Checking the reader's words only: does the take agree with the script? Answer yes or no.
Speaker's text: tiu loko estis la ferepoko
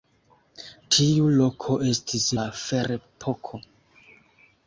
yes